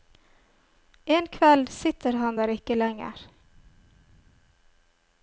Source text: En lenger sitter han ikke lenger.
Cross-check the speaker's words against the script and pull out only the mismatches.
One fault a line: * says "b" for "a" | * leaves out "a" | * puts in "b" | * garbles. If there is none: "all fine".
* says "kveld" for "lenger"
* puts in "der"